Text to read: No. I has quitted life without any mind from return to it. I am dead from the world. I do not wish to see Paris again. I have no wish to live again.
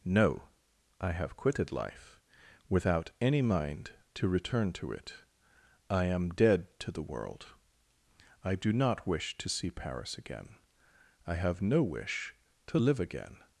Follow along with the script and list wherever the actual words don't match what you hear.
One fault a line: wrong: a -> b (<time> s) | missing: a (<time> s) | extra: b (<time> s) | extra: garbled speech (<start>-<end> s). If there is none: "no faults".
wrong: has -> have (1.1 s)
wrong: from -> to (4.1 s)
wrong: from -> to (6.8 s)